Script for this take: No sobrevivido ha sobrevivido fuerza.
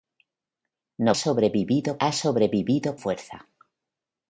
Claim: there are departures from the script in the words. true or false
false